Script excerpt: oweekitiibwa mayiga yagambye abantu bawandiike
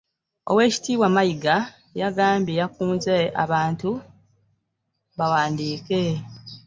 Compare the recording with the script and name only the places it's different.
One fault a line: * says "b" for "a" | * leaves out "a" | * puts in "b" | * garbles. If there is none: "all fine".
* puts in "yakunze"